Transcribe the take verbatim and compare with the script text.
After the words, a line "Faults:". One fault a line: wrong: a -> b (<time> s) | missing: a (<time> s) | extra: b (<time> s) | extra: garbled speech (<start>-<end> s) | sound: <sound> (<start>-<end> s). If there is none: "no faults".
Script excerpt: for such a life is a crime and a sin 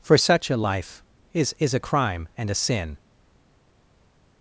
for such a life is is a crime and a sin
Faults:
extra: is (1.6 s)